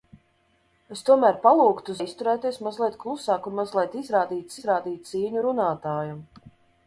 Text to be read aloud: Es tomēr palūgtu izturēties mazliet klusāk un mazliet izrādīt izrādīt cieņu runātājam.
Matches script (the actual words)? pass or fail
pass